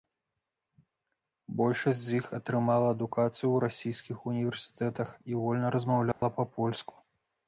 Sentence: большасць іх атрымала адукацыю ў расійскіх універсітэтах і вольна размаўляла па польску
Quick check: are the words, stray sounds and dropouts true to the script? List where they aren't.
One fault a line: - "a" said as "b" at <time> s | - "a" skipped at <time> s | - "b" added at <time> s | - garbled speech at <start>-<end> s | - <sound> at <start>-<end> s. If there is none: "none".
- "з" added at 2.0 s
- dropout at 6.1-6.2 s